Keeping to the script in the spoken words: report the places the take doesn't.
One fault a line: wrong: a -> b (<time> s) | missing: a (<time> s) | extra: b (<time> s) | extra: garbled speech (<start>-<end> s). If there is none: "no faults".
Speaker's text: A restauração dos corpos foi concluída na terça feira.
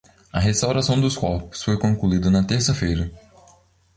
no faults